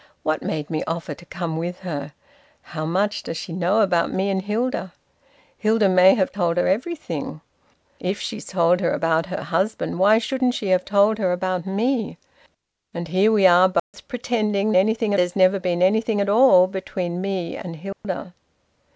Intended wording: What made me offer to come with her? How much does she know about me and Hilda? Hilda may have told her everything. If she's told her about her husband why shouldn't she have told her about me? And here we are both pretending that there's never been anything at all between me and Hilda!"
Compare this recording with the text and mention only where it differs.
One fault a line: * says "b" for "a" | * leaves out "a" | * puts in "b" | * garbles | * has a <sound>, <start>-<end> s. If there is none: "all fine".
* has a dropout, 13.8-13.9 s
* says "anything" for "that"
* has a dropout, 17.9-18.0 s